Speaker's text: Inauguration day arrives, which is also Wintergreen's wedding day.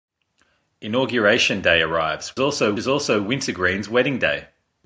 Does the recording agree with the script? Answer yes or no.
no